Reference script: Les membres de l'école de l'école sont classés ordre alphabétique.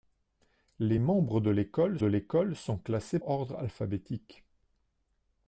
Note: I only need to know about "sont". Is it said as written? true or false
true